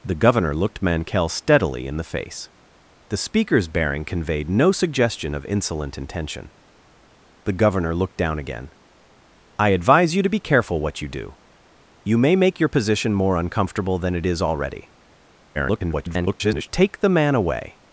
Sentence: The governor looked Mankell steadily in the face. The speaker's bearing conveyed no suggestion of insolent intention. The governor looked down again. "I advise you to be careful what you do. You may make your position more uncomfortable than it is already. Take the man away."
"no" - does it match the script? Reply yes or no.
yes